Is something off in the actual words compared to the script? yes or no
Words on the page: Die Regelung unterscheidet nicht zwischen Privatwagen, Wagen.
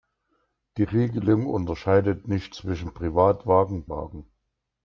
no